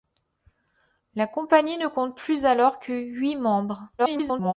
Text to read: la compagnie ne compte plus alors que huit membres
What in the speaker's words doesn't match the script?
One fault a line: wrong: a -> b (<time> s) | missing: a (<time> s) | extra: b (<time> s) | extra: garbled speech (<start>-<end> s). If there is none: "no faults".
extra: garbled speech (4.0-4.5 s)